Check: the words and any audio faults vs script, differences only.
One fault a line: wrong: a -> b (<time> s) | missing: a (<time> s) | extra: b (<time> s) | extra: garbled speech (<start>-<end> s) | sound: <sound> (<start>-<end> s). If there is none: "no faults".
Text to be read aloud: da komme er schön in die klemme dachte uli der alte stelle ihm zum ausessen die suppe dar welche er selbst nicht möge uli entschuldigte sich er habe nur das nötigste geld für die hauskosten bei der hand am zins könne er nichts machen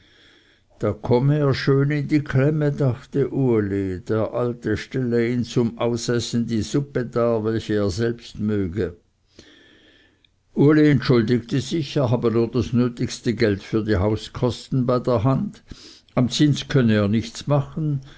missing: nicht (8.4 s)